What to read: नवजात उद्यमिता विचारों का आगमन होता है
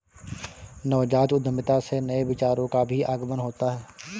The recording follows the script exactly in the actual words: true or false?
false